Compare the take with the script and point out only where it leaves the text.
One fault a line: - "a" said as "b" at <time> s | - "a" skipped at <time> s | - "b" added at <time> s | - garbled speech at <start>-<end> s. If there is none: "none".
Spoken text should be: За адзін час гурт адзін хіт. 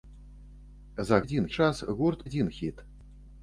none